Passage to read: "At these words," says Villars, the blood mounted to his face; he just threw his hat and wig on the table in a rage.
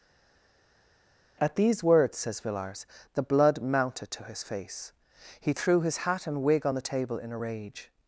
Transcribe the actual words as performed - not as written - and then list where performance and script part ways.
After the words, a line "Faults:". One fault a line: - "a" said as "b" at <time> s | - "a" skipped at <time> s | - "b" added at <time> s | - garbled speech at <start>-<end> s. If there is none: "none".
"At these words," says Villars, the blood mounted to his face; he threw his hat and wig on the table in a rage.
Faults:
- "just" skipped at 5.5 s